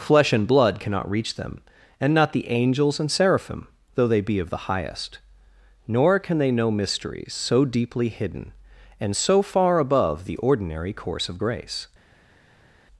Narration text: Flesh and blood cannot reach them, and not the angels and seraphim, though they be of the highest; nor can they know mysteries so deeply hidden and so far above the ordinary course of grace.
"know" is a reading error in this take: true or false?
false